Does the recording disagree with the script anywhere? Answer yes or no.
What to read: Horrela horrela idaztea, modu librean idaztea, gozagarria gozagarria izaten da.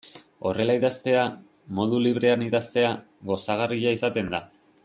yes